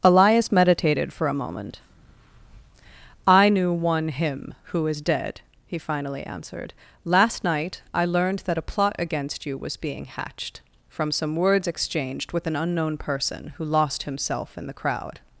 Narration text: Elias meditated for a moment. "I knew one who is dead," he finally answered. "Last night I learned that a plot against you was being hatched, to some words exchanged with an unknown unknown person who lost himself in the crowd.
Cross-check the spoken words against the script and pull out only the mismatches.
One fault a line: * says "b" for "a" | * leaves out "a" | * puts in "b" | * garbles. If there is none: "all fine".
* puts in "him"
* says "from" for "to"
* leaves out "unknown"